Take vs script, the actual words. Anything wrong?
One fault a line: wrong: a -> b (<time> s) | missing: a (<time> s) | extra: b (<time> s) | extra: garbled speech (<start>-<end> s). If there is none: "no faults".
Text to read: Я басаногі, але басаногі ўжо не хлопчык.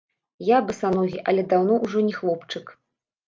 wrong: басаногі -> даўно (1.5 s)